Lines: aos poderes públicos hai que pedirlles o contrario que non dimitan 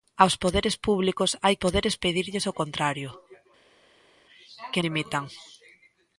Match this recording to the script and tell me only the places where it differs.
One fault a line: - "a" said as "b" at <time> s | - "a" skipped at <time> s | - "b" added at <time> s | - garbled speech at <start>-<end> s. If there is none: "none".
- "que" said as "poderes" at 1.6 s
- "non" skipped at 4.8 s